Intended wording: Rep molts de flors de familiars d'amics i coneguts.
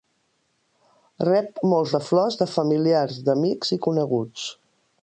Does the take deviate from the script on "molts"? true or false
false